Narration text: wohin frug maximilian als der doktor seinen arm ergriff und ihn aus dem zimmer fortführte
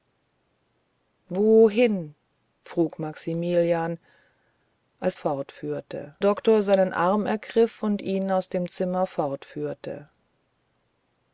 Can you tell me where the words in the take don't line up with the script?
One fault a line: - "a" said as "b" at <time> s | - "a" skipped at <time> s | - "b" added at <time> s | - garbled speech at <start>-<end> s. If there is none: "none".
- "der" said as "fortführte" at 5.1 s